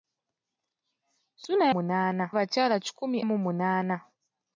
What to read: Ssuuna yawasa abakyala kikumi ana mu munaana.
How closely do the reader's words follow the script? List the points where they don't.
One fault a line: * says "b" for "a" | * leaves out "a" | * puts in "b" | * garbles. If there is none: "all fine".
* says "munaana" for "yawasa"
* leaves out "ana"